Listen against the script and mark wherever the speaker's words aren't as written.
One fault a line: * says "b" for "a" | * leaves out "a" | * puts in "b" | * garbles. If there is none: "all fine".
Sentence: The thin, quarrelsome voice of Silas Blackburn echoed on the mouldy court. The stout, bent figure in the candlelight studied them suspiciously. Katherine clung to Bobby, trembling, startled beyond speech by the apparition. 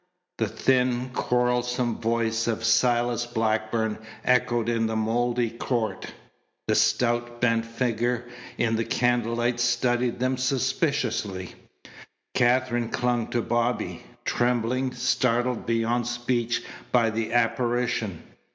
* says "in" for "on"